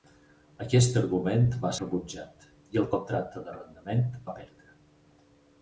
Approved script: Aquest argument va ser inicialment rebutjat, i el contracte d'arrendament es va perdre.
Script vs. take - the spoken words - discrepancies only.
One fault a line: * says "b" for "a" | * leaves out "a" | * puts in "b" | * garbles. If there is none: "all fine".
* leaves out "ser inicialment"
* leaves out "es"